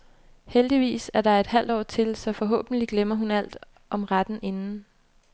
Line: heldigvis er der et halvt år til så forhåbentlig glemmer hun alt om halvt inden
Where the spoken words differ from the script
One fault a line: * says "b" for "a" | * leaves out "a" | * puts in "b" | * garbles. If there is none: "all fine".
* says "retten" for "halvt"